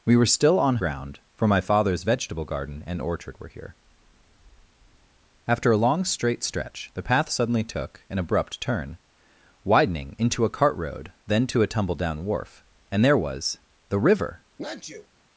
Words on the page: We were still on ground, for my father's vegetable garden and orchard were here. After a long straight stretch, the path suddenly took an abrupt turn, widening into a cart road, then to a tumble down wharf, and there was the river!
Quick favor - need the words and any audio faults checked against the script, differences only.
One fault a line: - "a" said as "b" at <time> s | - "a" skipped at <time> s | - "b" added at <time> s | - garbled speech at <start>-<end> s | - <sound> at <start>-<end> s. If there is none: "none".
- sneeze at 14.6-15.1 s